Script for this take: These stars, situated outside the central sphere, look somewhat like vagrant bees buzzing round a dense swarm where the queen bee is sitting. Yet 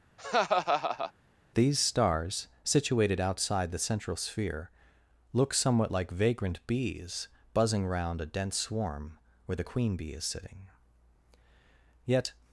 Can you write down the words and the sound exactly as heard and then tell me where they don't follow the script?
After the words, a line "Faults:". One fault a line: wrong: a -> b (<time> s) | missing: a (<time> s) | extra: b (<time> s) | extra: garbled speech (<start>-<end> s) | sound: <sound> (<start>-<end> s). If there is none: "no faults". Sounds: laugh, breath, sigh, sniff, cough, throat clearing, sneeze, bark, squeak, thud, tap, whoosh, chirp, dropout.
These stars, situated outside the central sphere, look somewhat like vagrant bees buzzing round a dense swarm where the queen bee is sitting. Yet
Faults:
sound: laugh (0.2-1.1 s)